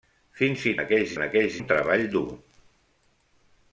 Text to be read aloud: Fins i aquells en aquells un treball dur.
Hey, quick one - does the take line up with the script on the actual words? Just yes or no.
yes